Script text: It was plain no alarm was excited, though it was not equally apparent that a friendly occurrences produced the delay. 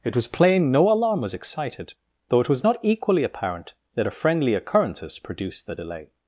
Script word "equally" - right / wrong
right